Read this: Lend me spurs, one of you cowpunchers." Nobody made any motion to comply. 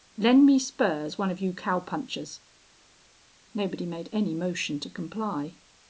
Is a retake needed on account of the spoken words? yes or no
no